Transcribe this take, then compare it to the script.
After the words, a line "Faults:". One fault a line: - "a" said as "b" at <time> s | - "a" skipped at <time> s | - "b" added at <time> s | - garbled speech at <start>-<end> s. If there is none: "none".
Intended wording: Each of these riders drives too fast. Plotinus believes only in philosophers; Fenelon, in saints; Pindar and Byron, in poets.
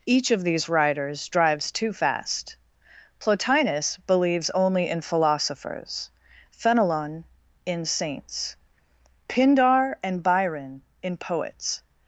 Each of these riders drives too fast. Plotinus believes only in philosophers; Fenelon, in saints; Pindar and Byron, in poets.
Faults:
none